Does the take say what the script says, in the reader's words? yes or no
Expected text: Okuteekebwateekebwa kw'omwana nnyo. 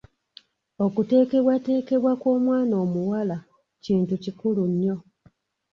no